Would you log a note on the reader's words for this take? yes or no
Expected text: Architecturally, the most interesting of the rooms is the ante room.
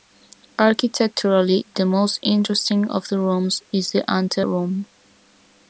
no